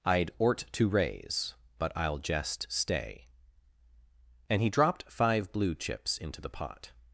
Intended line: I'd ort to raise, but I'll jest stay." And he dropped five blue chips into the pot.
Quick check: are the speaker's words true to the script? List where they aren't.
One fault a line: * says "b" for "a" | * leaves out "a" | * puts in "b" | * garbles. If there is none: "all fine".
all fine